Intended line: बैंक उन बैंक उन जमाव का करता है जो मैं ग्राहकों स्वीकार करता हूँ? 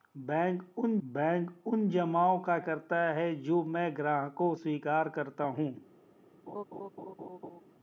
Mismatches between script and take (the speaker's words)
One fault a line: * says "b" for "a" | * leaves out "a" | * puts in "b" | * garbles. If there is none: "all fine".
all fine